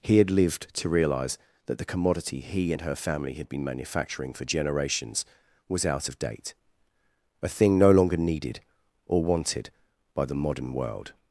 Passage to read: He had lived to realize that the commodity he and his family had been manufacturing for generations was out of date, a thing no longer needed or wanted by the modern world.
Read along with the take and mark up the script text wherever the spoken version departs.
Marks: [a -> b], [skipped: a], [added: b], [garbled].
He had lived to realize that the commodity he and [his -> her] family had been manufacturing for generations was out of date, a thing no longer needed or wanted by the modern world.